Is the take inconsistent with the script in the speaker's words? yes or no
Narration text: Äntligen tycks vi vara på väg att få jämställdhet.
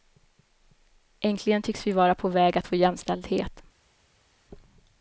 no